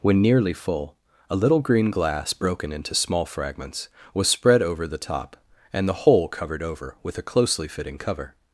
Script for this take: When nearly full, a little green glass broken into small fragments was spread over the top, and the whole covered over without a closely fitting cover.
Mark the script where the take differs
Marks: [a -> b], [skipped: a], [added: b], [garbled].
When nearly full, a little green glass broken into small fragments was spread over the top, and the whole covered over [without -> with] a closely fitting cover.